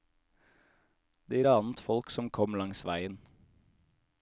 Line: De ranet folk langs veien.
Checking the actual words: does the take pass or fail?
fail